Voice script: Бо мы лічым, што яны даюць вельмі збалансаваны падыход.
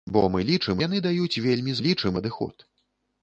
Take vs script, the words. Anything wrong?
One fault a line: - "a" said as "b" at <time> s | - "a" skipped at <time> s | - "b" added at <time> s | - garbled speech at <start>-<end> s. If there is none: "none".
- "што" skipped at 0.8 s
- "збалансаваны" said as "лічым" at 1.8 s